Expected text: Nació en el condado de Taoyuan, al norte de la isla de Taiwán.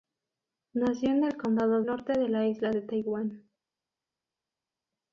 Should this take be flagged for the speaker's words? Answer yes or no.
yes